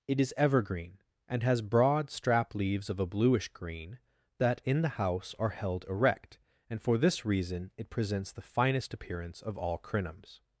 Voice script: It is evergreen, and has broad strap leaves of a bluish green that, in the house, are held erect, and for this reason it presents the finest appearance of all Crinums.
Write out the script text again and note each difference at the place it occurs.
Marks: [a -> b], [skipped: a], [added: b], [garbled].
It is evergreen, and has broad strap leaves of a bluish green that, in the house, are held erect, and for this reason it presents the finest appearance of all Crinums.